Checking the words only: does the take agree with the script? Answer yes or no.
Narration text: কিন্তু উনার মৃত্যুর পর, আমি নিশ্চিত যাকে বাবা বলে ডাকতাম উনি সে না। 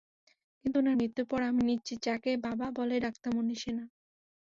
yes